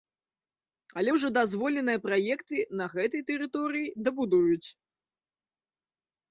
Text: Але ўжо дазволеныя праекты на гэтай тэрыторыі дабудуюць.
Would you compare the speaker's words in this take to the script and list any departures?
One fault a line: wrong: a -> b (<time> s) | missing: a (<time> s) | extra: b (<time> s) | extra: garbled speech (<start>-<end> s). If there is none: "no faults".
no faults